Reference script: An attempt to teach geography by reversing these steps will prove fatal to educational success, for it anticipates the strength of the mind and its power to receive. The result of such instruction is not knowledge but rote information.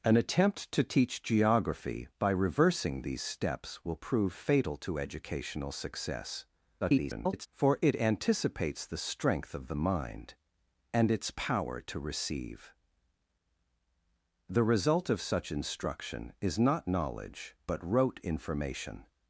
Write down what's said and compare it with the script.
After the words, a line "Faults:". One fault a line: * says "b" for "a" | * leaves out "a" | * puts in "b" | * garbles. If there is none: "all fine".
An attempt to teach geography by reversing these steps will prove fatal to educational success, [garbled] for it anticipates the strength of the mind and its power to receive. The result of such instruction is not knowledge but rote information.
Faults:
* garbles